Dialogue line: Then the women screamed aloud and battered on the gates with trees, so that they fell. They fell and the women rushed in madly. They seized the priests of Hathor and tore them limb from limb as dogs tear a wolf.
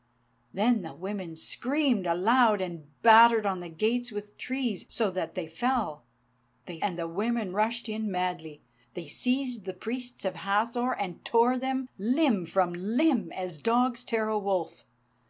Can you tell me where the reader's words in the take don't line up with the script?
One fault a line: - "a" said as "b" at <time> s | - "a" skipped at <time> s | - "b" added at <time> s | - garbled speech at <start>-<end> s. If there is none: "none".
- "fell" skipped at 6.8 s